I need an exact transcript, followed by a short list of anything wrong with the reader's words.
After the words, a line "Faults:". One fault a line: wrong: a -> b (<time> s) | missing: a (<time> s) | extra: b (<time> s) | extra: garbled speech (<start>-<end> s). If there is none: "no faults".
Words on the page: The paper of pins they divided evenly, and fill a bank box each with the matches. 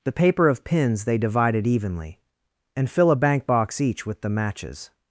The paper of pins they divided evenly, and fill a bank box each with the matches.
Faults:
no faults